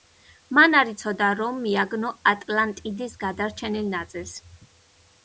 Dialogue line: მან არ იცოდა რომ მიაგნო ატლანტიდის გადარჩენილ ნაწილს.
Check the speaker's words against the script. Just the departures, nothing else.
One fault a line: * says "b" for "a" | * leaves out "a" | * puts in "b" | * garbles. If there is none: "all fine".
all fine